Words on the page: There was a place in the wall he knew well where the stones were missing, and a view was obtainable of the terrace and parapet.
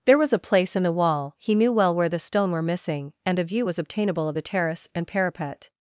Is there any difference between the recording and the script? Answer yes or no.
yes